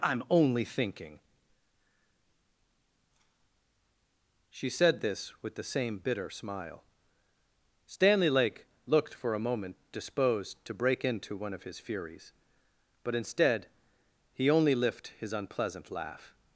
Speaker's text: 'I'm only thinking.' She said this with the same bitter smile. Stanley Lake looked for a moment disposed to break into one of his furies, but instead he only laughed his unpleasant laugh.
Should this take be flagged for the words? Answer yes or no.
yes